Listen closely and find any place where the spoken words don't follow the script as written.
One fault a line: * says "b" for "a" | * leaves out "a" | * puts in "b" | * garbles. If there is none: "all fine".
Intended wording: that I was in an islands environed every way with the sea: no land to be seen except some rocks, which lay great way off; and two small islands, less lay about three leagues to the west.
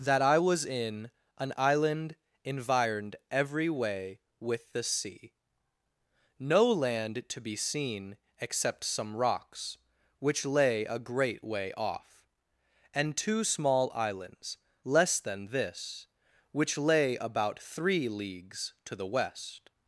* says "island" for "islands"
* puts in "a"
* puts in "than this which"